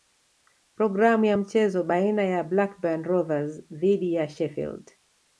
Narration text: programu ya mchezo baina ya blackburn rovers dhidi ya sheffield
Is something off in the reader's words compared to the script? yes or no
no